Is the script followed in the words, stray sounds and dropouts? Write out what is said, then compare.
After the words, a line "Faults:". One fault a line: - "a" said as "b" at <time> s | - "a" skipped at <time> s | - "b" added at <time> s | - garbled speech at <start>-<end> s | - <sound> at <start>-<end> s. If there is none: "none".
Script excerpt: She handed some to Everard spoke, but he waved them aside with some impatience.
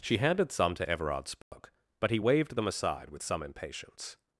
She handed some to Everard spoke, but he waved them aside with some impatience.
Faults:
- dropout at 1.4-1.5 s